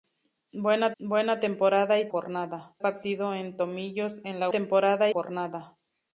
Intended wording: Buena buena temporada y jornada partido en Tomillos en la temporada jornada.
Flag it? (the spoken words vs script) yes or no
no